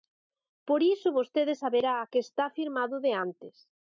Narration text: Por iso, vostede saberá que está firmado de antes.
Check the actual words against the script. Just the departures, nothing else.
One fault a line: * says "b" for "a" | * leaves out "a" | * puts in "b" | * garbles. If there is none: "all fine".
all fine